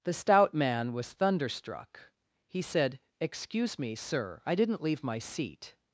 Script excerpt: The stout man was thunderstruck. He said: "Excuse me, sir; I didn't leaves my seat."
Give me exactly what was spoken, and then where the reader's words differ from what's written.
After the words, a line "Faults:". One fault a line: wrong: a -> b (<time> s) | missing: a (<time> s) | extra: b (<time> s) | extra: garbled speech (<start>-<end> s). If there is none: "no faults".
The stout man was thunderstruck. He said: "Excuse me, sir; I didn't leave my seat."
Faults:
wrong: leaves -> leave (4.8 s)